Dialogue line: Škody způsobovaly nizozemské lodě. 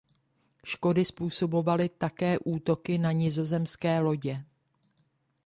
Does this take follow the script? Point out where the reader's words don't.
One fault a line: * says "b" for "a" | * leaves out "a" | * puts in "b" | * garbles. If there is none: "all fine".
* puts in "také útoky na"